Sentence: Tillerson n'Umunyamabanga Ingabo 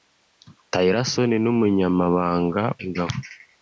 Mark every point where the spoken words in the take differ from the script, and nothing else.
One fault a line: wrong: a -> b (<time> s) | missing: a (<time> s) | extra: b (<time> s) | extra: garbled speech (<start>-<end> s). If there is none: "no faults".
no faults